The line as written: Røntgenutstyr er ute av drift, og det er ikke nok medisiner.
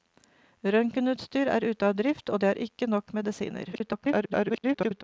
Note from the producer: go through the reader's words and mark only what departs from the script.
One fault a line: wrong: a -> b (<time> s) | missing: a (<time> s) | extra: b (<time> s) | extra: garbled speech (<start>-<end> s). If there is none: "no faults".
extra: garbled speech (3.7-5.0 s)